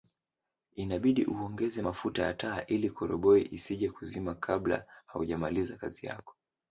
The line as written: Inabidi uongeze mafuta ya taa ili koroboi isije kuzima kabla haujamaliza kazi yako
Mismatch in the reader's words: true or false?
false